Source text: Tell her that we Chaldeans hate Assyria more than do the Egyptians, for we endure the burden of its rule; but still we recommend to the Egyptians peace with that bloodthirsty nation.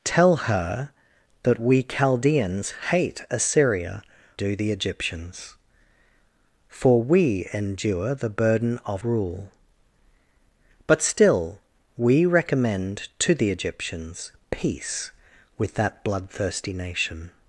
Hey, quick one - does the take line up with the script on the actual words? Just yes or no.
no